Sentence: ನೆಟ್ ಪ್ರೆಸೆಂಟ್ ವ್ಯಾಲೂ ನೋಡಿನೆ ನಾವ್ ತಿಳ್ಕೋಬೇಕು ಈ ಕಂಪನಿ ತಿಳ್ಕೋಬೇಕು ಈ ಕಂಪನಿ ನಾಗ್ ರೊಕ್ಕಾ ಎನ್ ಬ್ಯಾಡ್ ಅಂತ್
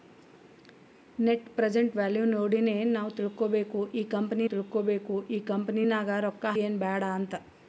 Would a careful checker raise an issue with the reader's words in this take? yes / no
no